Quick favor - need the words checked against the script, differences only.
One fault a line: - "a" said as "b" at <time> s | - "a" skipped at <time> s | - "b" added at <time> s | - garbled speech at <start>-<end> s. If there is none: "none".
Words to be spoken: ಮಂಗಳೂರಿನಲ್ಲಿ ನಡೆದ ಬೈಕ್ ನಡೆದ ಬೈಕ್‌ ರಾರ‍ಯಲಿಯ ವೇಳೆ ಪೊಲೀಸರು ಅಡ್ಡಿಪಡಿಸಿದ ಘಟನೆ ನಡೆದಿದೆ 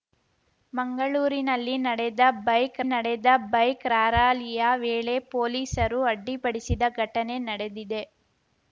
none